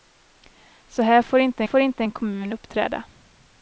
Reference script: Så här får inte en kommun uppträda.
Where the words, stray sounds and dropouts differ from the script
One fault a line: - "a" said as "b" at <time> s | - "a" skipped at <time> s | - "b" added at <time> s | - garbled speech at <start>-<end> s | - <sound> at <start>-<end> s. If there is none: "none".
- "får inte" added at 1.6 s